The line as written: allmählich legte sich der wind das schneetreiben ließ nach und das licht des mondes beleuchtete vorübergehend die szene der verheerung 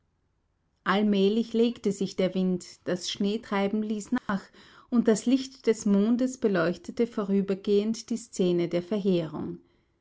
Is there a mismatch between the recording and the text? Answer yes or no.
no